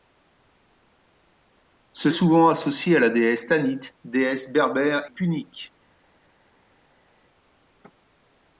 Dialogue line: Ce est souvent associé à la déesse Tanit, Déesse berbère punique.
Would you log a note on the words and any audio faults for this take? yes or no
no